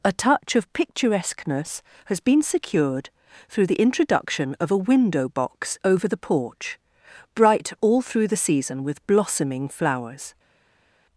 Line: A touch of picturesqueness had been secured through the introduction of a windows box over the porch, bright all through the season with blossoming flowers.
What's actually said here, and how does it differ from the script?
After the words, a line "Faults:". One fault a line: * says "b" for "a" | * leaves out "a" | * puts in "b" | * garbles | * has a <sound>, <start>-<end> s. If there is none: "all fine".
A touch of picturesqueness has been secured through the introduction of a window box over the porch, bright all through the season with blossoming flowers.
Faults:
* says "has" for "had"
* says "window" for "windows"